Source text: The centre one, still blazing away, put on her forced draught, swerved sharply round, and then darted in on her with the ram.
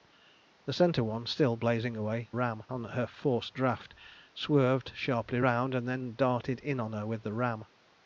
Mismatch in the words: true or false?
true